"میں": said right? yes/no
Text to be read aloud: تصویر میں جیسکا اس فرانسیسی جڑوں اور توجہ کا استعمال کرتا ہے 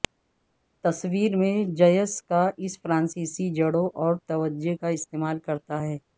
yes